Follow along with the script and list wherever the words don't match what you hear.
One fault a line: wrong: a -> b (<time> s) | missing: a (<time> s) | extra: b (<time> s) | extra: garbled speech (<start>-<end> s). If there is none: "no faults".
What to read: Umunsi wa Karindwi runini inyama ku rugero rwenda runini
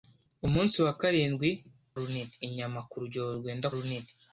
no faults